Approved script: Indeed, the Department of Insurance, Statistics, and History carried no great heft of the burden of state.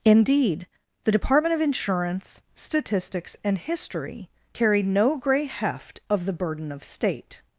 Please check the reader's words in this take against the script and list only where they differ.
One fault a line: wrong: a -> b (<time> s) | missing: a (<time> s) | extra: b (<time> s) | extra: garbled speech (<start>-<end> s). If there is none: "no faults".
wrong: great -> grey (5.2 s)